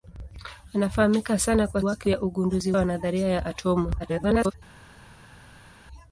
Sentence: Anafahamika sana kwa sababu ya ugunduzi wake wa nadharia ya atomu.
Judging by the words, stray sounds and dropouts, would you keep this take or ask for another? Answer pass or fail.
fail